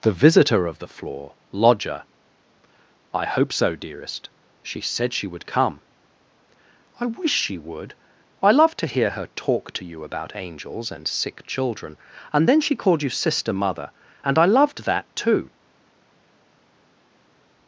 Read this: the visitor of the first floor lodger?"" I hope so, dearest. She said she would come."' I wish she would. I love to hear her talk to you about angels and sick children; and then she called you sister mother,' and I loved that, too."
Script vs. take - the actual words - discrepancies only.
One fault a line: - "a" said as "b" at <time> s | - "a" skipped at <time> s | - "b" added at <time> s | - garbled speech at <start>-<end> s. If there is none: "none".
- "first" skipped at 0.9 s